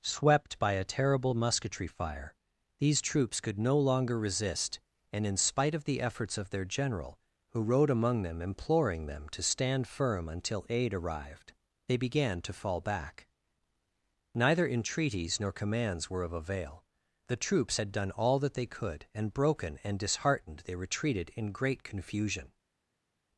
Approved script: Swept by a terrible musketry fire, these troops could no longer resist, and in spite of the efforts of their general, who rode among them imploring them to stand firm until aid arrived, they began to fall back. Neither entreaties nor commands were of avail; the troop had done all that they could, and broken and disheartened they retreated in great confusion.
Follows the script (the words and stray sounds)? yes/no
no